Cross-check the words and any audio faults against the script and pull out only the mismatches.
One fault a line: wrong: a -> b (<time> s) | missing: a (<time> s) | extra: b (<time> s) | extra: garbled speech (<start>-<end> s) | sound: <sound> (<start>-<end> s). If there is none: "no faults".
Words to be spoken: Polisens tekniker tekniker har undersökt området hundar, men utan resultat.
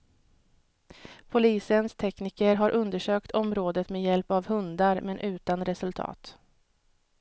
missing: tekniker (2.5 s)
extra: med hjälp av (3.9 s)